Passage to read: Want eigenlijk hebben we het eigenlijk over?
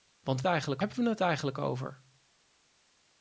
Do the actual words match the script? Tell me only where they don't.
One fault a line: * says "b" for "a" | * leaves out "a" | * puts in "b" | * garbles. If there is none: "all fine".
all fine